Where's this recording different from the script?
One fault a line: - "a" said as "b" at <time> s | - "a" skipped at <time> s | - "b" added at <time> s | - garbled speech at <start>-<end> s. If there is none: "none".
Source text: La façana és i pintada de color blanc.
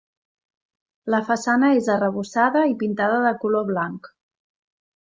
- "arrebossada" added at 2.0 s